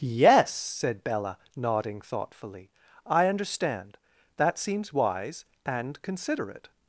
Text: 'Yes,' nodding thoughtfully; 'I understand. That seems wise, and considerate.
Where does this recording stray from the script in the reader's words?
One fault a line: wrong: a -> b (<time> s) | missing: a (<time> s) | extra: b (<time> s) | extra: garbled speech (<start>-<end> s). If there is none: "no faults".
extra: said Bella (0.6 s)